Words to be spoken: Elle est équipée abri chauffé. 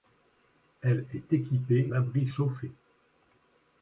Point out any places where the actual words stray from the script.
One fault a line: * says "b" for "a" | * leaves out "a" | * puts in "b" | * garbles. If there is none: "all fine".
all fine